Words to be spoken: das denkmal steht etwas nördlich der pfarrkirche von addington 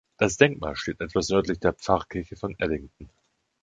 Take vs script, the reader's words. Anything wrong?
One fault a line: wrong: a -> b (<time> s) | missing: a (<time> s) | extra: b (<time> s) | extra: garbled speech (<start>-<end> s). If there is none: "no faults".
no faults